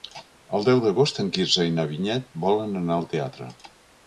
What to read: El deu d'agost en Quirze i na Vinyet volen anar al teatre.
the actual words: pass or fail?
pass